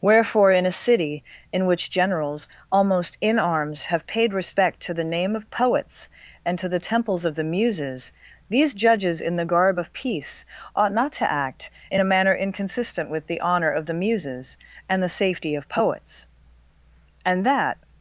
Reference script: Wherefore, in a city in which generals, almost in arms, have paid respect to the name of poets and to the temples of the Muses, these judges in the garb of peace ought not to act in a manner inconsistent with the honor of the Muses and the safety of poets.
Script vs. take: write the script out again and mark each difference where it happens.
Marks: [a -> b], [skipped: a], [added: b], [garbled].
Wherefore, in a city in which generals, almost in arms, have paid respect to the name of poets and to the temples of the Muses, these judges in the garb of peace ought not to act in a manner inconsistent with the honor of the Muses and the safety of poets. [added: And that]